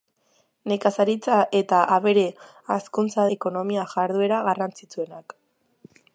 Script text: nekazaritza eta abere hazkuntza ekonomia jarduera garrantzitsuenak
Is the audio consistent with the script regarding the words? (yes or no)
yes